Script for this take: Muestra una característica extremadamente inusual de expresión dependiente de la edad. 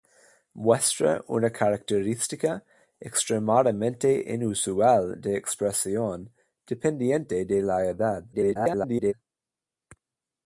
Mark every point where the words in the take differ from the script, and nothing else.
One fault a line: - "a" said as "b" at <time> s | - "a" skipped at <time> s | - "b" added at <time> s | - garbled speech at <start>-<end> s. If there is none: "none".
- garbled speech at 8.3-9.1 s